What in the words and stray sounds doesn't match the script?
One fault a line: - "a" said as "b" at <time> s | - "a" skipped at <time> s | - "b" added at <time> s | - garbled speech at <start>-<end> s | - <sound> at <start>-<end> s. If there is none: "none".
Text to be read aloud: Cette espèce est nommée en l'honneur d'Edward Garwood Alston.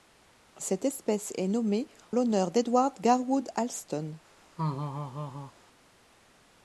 - "en" skipped at 1.9 s
- laugh at 4.6-5.5 s